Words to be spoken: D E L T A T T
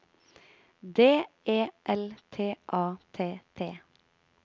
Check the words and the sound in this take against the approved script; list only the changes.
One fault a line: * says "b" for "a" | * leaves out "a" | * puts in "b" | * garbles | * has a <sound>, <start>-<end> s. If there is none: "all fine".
all fine